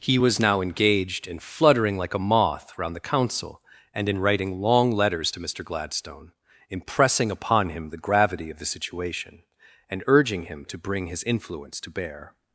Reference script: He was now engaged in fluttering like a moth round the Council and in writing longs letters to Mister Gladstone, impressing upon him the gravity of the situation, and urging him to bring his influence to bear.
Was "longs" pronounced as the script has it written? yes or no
no